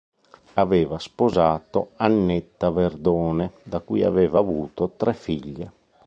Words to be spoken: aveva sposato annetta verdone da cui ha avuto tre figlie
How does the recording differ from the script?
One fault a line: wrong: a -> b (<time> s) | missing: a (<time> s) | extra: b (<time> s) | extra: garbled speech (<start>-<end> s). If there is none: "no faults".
wrong: ha -> aveva (4.0 s)